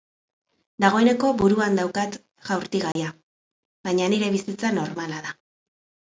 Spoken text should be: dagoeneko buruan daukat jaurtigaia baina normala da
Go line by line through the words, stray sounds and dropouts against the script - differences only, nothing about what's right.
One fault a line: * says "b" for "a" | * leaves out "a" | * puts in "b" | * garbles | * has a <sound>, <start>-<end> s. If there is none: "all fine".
* has a dropout, 2.9-3.0 s
* puts in "nire bizitza"